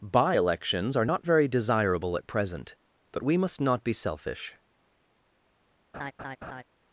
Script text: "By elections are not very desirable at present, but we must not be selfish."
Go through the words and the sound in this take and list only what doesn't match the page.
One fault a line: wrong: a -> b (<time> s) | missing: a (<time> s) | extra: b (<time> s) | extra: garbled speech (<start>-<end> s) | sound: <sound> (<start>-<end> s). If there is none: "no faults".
sound: laugh (5.9-6.6 s)